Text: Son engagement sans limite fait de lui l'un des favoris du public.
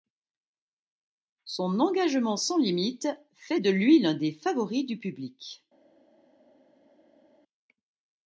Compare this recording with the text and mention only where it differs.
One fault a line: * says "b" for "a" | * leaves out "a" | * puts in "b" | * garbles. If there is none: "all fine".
all fine